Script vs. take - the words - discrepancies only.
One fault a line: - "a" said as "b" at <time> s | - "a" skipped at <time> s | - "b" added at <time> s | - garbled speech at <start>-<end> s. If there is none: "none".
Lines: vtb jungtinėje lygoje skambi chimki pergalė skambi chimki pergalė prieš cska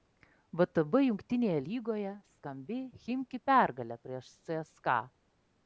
- "skambi chimki pergalė" skipped at 4.0 s